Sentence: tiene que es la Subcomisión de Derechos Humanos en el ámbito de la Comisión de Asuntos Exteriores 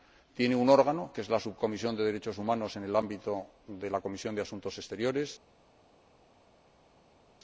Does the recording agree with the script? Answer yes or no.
no